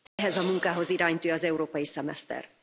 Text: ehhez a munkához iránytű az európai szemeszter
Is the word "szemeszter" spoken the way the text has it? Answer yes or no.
yes